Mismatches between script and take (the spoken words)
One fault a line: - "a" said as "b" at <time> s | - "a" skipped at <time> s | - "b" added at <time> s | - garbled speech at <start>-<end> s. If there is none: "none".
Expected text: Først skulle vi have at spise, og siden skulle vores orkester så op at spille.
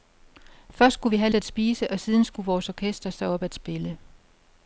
none